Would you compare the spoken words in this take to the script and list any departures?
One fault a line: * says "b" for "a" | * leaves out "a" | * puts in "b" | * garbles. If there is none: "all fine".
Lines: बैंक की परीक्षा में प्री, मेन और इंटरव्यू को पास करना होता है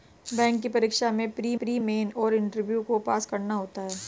* puts in "प्री"